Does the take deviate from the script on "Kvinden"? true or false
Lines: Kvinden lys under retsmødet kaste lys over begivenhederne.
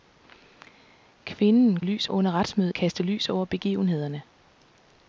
false